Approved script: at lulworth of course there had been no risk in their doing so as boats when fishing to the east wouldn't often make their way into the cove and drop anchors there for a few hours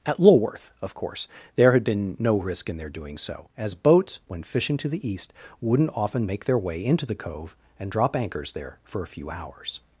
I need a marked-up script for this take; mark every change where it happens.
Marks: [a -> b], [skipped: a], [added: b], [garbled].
at lulworth of course there had been no risk in their doing so as boats when fishing to the east wouldn't often make their way into the cove and drop anchors there for a few hours